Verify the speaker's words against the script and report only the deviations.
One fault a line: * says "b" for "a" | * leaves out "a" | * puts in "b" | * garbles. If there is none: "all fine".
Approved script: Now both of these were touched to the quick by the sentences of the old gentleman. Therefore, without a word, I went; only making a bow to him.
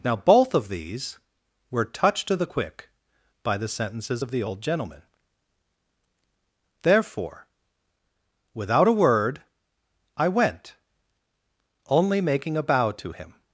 all fine